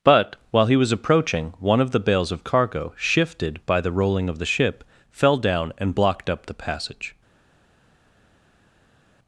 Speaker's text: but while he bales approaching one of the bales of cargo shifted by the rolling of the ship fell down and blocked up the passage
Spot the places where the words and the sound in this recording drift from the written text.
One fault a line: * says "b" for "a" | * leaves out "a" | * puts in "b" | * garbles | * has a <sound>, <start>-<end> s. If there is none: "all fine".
* says "was" for "bales"